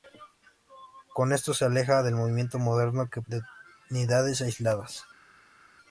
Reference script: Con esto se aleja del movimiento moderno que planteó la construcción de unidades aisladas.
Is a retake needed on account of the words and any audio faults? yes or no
yes